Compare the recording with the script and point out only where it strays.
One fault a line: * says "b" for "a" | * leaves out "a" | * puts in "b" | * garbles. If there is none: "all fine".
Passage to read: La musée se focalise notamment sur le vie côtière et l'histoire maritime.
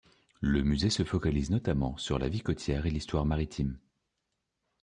* says "Le" for "La"
* says "la" for "le"